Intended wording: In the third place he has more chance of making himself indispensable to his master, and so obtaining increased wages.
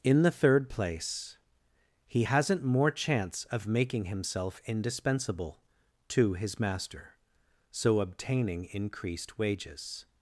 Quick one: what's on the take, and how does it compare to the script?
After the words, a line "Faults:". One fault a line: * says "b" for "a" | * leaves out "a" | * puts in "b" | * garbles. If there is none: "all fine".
In the third place he hasn't more chance of making himself indispensable to his master, so obtaining increased wages.
Faults:
* says "hasn't" for "has"
* leaves out "and"